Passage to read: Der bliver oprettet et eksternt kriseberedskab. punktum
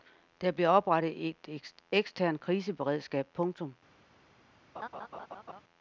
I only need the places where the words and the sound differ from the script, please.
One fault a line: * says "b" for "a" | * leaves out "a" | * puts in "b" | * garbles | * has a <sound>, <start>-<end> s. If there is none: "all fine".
* has a laugh, 4.7-5.6 s